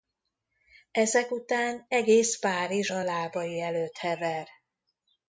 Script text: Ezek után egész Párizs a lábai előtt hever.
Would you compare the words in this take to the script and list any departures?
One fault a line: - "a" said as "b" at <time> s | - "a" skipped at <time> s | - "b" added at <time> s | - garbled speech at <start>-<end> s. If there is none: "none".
none